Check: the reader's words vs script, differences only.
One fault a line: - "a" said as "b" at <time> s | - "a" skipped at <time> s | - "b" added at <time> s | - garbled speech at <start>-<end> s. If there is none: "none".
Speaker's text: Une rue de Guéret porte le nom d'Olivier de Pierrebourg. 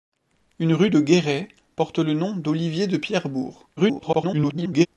- garbled speech at 3.8-4.9 s